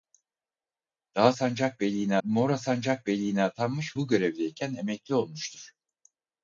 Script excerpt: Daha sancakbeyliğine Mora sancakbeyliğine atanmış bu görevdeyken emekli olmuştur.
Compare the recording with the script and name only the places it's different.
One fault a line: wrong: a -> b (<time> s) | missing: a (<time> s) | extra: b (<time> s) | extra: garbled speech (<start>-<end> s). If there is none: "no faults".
no faults